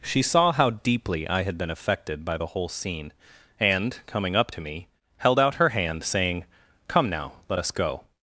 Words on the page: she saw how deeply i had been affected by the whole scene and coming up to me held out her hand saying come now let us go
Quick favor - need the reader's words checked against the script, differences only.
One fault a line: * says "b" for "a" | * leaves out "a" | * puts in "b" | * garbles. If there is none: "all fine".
all fine